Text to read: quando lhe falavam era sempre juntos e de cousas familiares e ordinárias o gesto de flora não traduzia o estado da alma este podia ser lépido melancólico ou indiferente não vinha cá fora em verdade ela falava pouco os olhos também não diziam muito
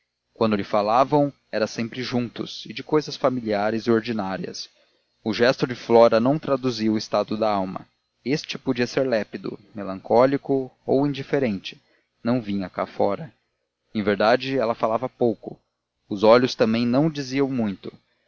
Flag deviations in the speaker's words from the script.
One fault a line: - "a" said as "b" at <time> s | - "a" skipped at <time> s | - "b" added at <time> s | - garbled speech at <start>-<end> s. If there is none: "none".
none